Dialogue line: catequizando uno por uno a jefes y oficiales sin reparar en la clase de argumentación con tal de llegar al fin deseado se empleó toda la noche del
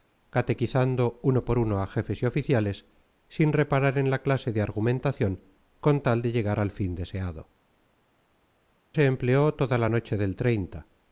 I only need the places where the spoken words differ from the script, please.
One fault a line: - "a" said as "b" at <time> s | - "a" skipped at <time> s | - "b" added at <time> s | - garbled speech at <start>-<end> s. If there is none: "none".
none